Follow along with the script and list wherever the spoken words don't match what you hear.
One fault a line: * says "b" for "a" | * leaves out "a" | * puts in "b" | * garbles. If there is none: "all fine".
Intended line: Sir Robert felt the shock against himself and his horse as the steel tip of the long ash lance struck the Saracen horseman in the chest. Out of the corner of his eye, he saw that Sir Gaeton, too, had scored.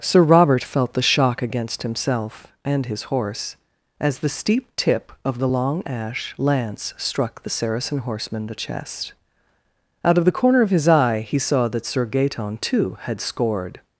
* says "steep" for "steel"
* leaves out "in"